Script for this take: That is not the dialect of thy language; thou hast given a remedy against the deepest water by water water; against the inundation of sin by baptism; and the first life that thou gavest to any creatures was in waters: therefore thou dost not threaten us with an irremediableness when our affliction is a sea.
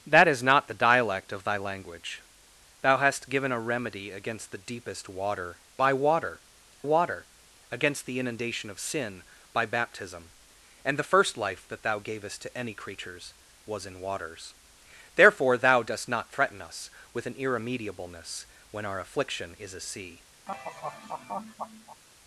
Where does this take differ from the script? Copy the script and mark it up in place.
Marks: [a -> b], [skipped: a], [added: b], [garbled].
That is not the dialect of thy language; thou hast given a remedy against the deepest water by water water; against the inundation of sin by baptism; and the first life that thou gavest to any creatures was in waters: therefore thou dost not threaten us with an irremediableness when our affliction is a sea.